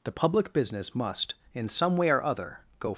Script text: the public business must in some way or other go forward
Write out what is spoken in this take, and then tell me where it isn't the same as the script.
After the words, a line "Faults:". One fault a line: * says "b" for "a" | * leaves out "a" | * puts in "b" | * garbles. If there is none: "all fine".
the public business must in some way or other go
Faults:
* leaves out "forward"